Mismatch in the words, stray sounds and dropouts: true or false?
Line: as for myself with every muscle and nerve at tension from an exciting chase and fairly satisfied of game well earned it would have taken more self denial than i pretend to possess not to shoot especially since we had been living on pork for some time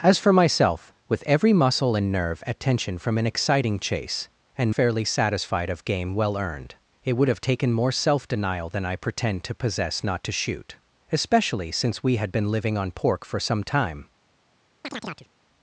true